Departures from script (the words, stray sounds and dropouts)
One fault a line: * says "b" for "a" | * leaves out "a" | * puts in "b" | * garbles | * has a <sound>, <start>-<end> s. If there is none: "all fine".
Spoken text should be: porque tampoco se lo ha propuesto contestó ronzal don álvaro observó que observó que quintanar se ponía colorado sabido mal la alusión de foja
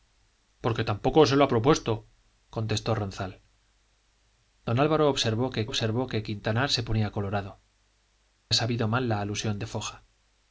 all fine